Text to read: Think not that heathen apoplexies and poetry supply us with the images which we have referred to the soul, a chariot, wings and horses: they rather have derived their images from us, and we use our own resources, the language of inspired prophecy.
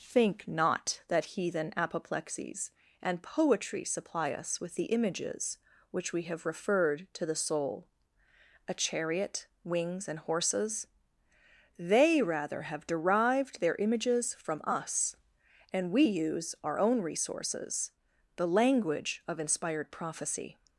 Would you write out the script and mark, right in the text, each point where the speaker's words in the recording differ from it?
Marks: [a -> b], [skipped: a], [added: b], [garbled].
Think not that heathen apoplexies and poetry supply us with the images which we have referred to the soul, a chariot, wings and horses: they rather have derived their images from us, and we use our own resources, the language of inspired prophecy.